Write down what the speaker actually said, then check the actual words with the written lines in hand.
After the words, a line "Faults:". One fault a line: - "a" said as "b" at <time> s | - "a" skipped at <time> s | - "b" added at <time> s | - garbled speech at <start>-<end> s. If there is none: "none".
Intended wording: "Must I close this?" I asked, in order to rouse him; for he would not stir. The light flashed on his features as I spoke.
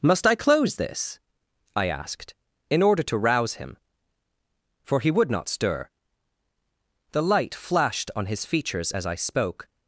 "Must I close this?" I asked, in order to rouse him; for he would not stir. The light flashed on his features as I spoke.
Faults:
none